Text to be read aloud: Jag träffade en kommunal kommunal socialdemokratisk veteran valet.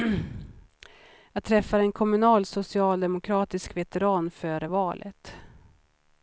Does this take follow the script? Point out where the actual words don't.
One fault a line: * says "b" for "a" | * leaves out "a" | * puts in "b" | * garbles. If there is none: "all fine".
* leaves out "kommunal"
* puts in "före"